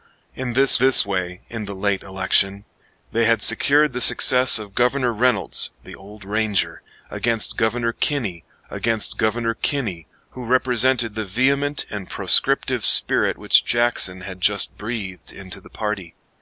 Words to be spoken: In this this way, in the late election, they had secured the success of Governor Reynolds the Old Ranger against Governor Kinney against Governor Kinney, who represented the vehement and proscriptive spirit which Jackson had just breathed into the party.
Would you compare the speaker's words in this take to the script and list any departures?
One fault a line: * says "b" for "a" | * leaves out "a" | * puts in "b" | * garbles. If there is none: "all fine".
all fine